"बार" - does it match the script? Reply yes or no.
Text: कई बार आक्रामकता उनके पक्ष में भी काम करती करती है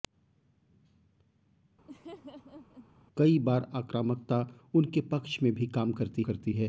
yes